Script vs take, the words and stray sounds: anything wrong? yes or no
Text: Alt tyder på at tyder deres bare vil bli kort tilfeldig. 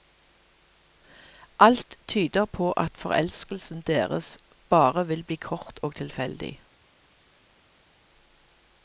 yes